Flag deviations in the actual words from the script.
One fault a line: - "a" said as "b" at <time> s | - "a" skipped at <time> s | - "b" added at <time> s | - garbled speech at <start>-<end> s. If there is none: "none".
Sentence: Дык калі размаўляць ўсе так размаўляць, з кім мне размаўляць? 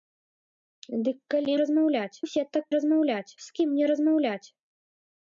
none